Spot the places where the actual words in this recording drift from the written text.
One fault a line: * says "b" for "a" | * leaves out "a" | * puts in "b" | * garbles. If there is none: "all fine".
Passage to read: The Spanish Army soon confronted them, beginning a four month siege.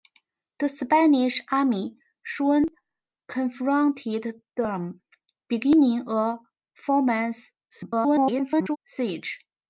* garbles